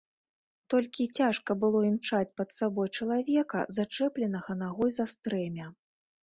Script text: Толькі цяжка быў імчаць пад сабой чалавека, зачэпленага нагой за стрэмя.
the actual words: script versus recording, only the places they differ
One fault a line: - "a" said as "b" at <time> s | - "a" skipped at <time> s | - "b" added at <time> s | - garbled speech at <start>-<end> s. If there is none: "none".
- "быў" said as "было" at 1.6 s